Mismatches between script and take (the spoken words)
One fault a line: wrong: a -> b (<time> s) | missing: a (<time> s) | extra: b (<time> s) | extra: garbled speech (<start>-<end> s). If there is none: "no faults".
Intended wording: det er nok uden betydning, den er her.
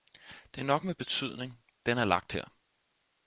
wrong: uden -> med (0.8 s)
extra: lagt (2.1 s)